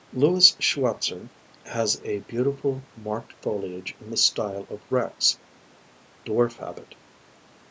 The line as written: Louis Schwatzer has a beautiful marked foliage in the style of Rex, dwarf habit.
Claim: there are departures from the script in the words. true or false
false